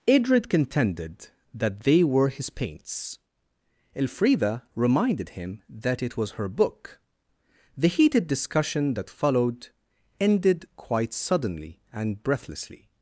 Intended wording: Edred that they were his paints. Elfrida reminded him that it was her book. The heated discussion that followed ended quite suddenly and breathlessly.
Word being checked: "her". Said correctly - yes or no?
yes